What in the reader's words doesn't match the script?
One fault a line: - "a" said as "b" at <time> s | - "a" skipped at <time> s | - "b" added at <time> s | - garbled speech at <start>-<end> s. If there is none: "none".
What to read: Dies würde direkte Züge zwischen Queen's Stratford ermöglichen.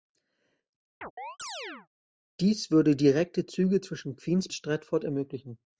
none